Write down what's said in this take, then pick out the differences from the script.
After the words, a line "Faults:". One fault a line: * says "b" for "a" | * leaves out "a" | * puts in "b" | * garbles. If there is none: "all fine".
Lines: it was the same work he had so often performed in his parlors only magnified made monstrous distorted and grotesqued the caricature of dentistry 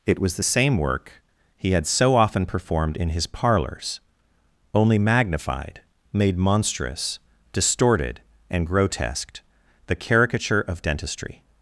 it was the same work he had so often performed in his parlors only magnified made monstrous distorted and grotesqued the caricature of dentistry
Faults:
all fine